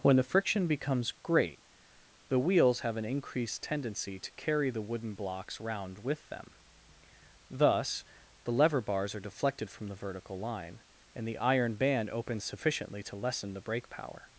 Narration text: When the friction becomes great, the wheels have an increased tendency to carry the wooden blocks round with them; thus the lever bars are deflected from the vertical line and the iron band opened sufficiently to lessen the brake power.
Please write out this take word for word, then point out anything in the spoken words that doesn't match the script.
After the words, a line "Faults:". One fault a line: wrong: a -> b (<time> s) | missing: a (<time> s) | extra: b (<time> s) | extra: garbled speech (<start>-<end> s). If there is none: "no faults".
When the friction becomes great, the wheels have an increased tendency to carry the wooden blocks round with them; thus the lever bars are deflected from the vertical line and the iron band opens sufficiently to lessen the brake power.
Faults:
wrong: opened -> opens (12.1 s)